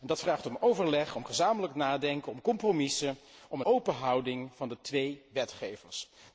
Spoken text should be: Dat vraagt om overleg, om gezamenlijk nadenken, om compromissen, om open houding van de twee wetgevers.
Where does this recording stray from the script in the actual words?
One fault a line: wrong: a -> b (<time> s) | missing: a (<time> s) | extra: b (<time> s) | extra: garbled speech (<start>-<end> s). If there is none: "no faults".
no faults